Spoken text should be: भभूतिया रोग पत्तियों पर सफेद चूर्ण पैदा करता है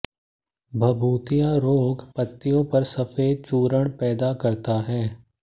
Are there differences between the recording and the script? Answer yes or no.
no